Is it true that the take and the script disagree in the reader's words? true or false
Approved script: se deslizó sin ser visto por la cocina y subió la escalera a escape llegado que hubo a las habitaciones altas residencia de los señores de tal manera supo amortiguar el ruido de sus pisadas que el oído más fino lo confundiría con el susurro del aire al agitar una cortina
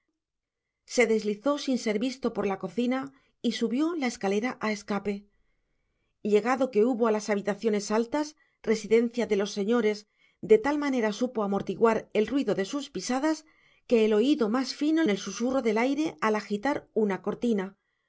true